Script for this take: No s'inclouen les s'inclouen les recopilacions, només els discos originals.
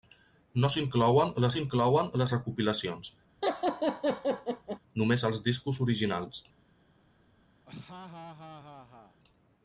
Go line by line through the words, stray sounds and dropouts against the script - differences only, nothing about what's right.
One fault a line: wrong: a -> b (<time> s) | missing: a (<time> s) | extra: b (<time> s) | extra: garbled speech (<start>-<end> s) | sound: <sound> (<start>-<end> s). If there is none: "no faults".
sound: laugh (3.4-4.8 s)
sound: laugh (7.7-9.2 s)